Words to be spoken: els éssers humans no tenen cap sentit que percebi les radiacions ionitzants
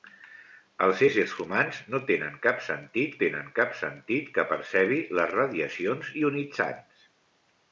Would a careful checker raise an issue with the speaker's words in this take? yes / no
yes